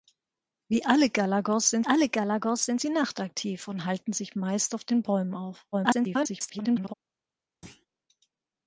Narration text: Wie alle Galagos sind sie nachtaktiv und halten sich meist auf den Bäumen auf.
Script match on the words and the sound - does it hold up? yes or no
no